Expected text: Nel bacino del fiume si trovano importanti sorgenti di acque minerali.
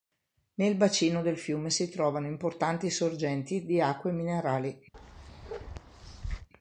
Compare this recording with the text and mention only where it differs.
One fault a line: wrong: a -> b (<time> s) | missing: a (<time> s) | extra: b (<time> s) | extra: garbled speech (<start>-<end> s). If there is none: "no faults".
no faults